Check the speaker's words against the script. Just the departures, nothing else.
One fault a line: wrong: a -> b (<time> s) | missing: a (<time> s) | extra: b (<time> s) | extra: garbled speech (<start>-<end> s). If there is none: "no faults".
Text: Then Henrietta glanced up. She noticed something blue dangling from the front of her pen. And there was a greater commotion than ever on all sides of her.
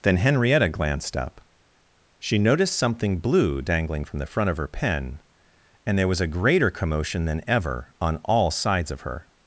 no faults